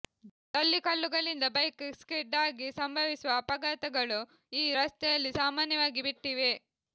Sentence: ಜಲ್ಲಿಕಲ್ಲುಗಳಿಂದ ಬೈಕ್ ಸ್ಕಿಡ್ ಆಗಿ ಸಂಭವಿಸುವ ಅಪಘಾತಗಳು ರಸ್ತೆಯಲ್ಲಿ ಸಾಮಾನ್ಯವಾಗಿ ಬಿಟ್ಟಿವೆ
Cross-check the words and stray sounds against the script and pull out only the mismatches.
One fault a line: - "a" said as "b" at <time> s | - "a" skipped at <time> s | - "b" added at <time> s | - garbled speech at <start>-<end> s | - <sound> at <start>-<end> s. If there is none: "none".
- "ಈ" added at 4.5 s